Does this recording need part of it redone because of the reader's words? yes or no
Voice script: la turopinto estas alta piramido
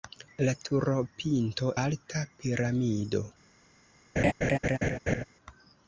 yes